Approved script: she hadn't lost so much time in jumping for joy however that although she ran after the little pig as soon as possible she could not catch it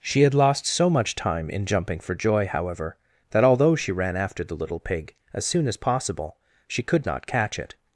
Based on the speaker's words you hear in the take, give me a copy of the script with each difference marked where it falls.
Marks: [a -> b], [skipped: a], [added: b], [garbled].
she [hadn't -> had] lost so much time in jumping for joy however that although she ran after the little pig as soon as possible she could not catch it